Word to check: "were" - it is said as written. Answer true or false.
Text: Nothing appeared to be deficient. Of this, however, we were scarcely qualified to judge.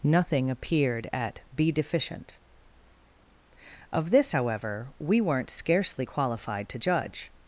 false